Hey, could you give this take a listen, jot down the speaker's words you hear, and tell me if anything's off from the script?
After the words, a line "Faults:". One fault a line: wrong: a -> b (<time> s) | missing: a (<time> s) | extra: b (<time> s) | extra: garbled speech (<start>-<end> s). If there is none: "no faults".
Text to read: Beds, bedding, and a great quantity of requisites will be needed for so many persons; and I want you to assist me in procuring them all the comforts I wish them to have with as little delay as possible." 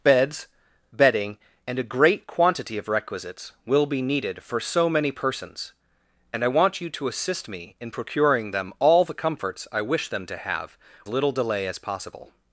Beds, bedding, and a great quantity of requisites will be needed for so many persons; and I want you to assist me in procuring them all the comforts I wish them to have little delay as possible."
Faults:
missing: with as (10.8 s)